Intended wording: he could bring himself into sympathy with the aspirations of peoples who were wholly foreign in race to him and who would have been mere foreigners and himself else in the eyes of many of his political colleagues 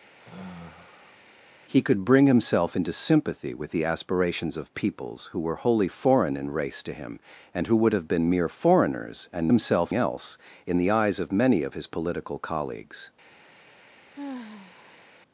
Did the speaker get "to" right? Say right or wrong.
right